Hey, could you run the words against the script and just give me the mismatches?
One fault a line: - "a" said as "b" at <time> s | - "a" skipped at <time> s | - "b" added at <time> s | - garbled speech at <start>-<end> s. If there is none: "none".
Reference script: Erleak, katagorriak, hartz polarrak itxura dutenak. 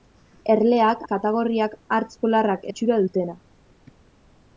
none